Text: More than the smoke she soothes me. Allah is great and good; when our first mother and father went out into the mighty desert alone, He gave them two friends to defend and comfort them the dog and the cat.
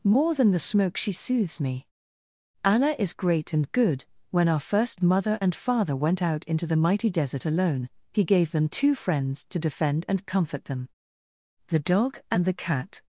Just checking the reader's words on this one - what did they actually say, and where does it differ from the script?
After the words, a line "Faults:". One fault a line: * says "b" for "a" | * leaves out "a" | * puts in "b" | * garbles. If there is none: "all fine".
More than the smoke she soothes me. Allah is great and good; when our first mother and father went out into the mighty desert alone, He gave them two friends to defend and comfort them the dog and the cat.
Faults:
all fine